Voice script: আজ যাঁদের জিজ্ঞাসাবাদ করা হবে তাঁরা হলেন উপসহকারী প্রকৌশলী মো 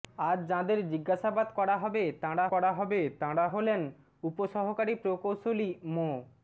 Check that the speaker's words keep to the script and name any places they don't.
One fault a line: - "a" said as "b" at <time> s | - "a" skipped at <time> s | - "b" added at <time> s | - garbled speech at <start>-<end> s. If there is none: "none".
- "করা হবে তাঁরা" added at 2.5 s